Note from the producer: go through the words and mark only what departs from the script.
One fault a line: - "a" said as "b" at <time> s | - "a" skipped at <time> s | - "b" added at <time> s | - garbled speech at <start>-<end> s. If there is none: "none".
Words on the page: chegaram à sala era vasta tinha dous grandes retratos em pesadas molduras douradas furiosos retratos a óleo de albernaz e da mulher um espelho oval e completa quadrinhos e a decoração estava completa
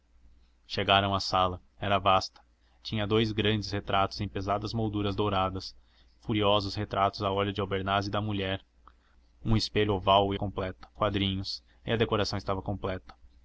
none